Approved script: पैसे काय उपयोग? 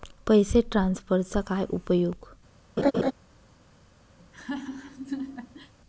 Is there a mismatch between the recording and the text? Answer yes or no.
yes